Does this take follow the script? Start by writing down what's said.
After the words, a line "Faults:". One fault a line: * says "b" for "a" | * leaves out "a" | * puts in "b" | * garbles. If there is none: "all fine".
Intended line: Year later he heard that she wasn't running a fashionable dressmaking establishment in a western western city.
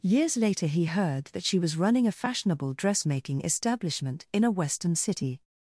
Years later he heard that she was running a fashionable dressmaking establishment in a western city.
Faults:
* says "Years" for "Year"
* says "was" for "wasn't"
* leaves out "western"